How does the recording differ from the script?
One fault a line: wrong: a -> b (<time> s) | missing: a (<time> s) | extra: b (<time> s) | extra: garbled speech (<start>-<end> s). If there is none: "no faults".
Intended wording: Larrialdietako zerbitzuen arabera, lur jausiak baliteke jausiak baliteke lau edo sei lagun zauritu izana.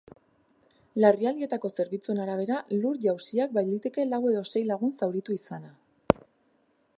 missing: jausiak baliteke (4.1 s)